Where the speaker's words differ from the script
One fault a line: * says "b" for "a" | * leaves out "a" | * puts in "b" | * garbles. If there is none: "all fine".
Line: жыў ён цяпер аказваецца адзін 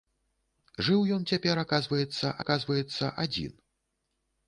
* puts in "аказваецца"